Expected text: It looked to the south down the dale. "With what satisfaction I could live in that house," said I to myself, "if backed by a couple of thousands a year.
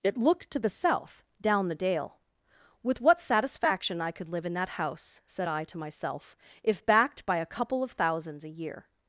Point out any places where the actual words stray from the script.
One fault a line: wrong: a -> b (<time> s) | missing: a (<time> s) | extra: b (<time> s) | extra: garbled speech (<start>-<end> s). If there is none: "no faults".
no faults